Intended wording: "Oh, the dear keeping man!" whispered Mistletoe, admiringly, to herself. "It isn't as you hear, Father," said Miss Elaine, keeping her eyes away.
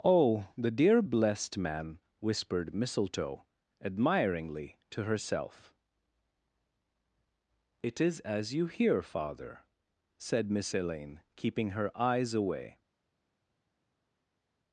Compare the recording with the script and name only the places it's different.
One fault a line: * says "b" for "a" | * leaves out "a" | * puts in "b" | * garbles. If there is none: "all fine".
* says "blessed" for "keeping"
* says "is" for "isn't"